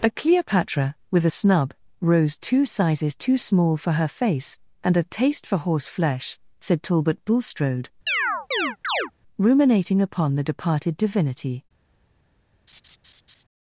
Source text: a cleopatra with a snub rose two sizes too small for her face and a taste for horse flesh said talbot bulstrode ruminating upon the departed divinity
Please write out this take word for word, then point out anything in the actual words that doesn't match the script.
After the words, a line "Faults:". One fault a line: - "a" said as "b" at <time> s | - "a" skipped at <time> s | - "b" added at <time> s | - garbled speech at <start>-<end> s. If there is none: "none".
a cleopatra with a snub rose two sizes too small for her face and a taste for horse flesh said talbot bulstrode ruminating upon the departed divinity
Faults:
none